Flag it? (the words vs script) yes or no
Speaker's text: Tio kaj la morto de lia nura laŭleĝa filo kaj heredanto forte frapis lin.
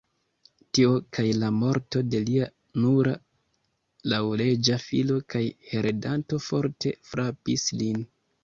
no